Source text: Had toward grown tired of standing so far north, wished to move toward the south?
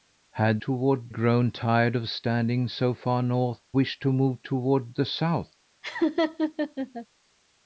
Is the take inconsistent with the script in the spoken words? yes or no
no